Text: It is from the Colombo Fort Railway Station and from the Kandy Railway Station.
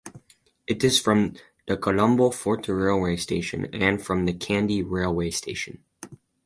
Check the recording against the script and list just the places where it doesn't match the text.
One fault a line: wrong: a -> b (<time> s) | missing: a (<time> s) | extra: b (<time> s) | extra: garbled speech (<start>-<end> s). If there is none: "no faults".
no faults